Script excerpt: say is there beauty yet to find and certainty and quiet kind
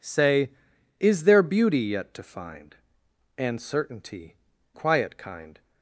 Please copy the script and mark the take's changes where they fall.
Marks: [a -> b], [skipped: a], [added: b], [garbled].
say is there beauty yet to find and certainty [skipped: and] quiet kind